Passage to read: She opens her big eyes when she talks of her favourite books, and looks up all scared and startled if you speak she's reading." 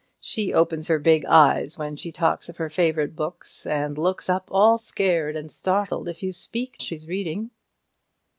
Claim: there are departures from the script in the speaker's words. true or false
false